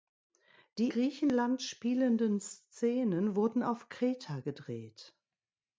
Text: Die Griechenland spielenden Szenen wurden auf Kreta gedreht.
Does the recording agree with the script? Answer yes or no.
yes